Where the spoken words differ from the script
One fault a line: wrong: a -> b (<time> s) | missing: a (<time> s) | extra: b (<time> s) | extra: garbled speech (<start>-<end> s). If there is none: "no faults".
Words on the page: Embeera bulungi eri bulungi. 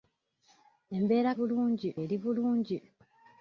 no faults